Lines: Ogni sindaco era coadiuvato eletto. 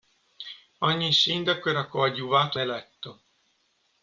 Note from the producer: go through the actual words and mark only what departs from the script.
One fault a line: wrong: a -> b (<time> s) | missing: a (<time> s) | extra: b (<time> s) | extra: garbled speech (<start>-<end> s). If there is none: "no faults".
no faults